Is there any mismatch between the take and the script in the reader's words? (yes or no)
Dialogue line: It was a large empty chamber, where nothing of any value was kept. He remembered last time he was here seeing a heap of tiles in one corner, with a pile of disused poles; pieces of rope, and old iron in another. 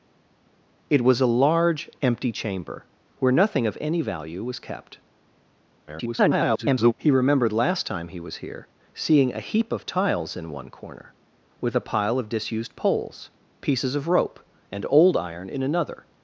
yes